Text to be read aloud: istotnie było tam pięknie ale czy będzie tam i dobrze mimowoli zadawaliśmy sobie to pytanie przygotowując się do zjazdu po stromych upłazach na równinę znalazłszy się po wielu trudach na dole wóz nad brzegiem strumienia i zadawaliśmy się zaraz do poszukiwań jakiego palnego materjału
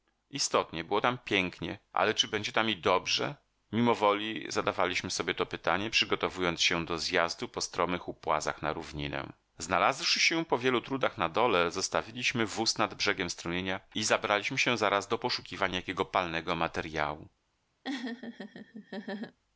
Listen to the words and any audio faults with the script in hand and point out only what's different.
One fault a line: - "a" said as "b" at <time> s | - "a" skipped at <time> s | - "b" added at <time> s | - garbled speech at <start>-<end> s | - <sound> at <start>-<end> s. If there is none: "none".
- "zostawiliśmy" added at 11.7 s
- "zadawaliśmy" said as "zabraliśmy" at 14.0 s
- laugh at 17.8-19.4 s